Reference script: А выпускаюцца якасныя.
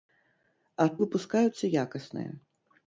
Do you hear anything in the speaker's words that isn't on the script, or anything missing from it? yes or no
no